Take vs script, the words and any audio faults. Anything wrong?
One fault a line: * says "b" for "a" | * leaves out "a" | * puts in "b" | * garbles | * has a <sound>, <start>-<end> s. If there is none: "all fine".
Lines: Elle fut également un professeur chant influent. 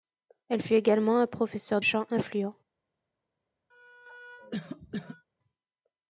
* has a cough, 3.7-5.3 s